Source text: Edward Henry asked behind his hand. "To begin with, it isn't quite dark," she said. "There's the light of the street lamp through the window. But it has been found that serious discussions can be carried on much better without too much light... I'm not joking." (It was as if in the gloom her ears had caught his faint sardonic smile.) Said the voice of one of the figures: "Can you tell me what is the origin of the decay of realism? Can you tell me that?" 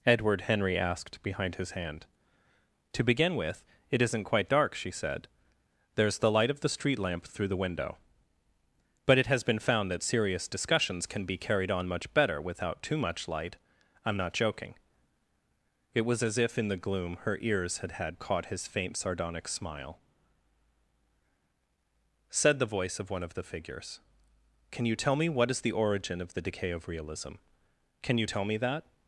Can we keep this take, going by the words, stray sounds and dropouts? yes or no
no